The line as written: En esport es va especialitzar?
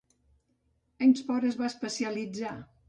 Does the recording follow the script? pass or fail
pass